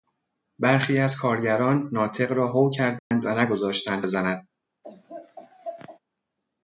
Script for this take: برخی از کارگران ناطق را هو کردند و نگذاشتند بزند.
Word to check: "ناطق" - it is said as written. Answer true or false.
true